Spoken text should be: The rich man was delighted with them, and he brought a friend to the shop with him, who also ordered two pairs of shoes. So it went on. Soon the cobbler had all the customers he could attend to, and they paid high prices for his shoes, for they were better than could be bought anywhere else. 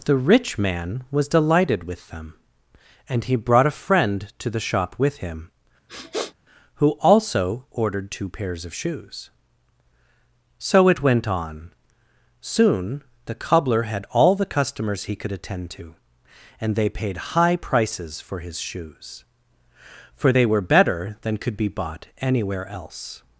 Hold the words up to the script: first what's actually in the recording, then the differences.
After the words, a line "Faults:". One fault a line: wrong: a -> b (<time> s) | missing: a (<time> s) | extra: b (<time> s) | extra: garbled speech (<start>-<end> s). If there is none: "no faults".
The rich man was delighted with them, and he brought a friend to the shop with him, who also ordered two pairs of shoes. So it went on. Soon the cobbler had all the customers he could attend to, and they paid high prices for his shoes, for they were better than could be bought anywhere else.
Faults:
no faults